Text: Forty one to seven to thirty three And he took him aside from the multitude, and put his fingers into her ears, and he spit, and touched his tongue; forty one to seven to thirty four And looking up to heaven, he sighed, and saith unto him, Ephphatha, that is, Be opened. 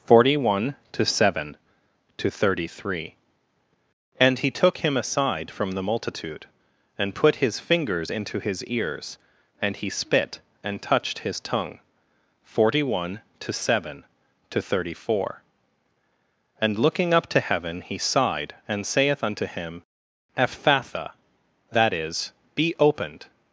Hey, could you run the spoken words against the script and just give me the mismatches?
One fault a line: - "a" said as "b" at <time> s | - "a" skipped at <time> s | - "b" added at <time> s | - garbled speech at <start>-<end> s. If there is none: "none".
- "her" said as "his" at 8.4 s